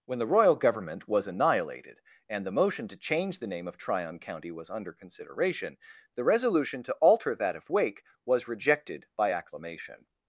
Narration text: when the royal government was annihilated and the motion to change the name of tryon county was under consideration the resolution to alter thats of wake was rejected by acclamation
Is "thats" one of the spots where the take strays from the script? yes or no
yes